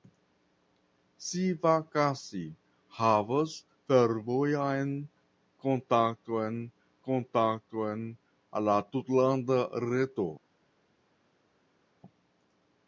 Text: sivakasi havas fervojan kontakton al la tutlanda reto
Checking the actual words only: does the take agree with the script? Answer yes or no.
no